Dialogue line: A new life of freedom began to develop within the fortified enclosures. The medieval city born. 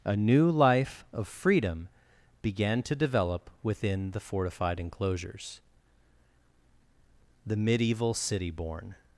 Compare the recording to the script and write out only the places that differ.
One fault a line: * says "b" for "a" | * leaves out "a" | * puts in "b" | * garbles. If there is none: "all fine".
all fine